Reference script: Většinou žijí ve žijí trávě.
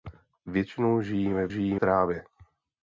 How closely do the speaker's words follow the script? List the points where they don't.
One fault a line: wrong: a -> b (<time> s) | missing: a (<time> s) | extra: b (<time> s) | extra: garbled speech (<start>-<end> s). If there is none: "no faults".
no faults